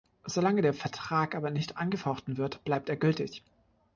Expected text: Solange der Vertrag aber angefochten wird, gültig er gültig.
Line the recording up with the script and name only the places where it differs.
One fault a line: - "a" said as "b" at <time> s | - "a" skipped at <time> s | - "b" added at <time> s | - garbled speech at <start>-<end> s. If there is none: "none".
- "nicht" added at 1.5 s
- "gültig" said as "bleibt" at 2.6 s